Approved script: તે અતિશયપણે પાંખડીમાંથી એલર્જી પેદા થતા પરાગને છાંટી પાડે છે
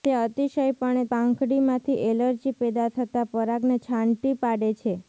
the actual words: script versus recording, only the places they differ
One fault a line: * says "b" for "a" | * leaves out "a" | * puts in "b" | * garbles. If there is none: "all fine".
all fine